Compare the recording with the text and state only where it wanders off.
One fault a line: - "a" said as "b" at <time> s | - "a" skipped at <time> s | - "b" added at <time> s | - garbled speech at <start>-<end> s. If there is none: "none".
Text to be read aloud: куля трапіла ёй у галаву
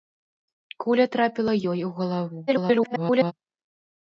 - garbled speech at 2.5-3.3 s